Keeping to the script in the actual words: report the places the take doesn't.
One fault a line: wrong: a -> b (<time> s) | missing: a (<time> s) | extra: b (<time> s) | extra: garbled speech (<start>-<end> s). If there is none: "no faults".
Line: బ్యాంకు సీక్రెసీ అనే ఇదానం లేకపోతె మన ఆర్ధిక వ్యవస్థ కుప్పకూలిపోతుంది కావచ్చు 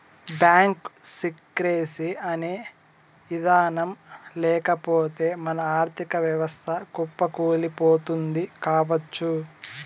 no faults